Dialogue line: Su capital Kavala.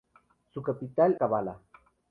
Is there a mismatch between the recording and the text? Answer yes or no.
no